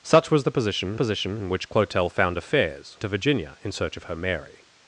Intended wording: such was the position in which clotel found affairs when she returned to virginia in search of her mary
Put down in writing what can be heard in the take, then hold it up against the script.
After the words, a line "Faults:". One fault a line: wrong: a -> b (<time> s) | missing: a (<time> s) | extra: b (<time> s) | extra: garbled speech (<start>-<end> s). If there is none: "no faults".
such was the position position in which clotel found affairs to virginia in search of her mary
Faults:
extra: position (0.9 s)
missing: when she returned (3.0 s)